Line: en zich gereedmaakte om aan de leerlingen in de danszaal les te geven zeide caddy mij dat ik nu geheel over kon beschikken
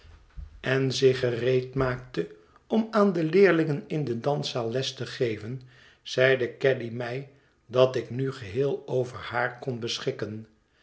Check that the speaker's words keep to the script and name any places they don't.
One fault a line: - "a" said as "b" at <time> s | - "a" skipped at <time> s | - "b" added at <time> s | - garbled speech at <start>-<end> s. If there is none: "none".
- "haar" added at 9.2 s